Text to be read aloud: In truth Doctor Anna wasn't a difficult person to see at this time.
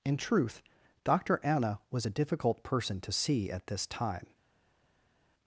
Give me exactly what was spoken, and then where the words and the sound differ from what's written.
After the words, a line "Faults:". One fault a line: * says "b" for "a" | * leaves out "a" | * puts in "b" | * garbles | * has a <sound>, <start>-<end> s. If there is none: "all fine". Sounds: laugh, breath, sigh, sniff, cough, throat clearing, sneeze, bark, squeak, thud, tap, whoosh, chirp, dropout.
In truth Doctor Anna was a difficult person to see at this time.
Faults:
* says "was" for "wasn't"